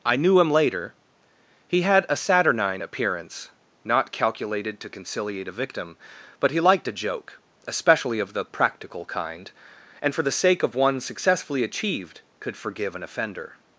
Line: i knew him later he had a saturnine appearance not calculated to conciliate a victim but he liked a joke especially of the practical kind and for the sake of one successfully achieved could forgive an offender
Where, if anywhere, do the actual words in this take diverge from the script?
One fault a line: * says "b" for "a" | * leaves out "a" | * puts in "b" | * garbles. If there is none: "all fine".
all fine